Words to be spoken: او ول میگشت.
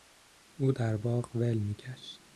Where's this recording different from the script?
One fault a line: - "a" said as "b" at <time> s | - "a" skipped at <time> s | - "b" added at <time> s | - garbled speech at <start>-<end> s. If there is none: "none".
- "در باغ" added at 0.7 s